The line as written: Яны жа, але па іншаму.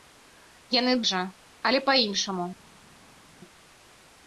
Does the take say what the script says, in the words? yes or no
yes